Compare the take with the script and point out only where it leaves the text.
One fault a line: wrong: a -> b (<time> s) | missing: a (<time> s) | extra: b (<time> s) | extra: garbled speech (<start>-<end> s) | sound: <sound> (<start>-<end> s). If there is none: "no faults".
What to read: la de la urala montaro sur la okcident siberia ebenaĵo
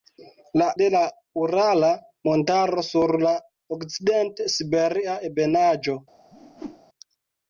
sound: whoosh (6.3-6.8 s)